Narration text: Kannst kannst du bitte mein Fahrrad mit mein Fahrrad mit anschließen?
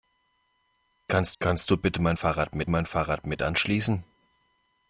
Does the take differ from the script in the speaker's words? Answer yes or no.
no